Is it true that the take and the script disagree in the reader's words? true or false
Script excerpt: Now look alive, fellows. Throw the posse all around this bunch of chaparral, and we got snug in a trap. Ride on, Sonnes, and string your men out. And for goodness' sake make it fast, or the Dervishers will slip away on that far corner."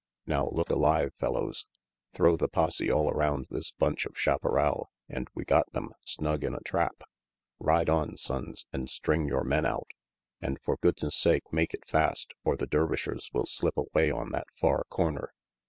true